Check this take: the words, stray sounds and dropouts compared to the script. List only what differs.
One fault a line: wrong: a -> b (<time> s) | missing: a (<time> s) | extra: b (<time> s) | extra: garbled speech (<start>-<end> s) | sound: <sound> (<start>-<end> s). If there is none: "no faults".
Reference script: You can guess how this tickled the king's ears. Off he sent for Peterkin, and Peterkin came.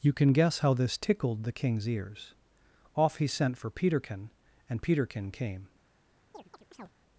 sound: chirp (6.3-6.9 s)